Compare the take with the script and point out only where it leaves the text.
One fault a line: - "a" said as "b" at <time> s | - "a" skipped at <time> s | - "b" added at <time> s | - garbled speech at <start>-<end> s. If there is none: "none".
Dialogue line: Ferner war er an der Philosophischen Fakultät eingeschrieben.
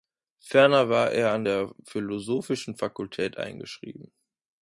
none